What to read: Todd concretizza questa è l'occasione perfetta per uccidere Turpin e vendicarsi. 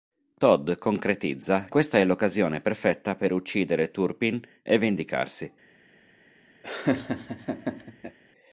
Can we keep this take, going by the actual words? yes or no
yes